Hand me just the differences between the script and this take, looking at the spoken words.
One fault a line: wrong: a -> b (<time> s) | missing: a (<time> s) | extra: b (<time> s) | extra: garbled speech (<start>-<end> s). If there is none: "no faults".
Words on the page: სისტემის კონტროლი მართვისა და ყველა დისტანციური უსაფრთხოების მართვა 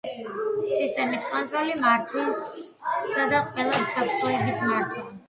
missing: დისტანციური (3.8 s)